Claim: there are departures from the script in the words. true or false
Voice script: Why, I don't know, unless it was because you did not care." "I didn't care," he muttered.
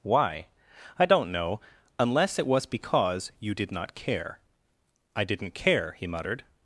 false